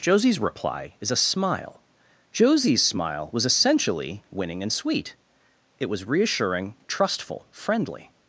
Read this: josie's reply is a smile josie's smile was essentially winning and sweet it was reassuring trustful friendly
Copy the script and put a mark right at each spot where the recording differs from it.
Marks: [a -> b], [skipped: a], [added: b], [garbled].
josie's reply is a smile josie's smile was essentially winning and sweet it was reassuring trustful friendly